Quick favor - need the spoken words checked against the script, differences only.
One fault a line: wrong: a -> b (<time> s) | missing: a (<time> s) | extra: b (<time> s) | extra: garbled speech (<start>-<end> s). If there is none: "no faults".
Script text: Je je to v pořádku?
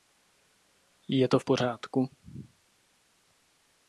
missing: je (1.3 s)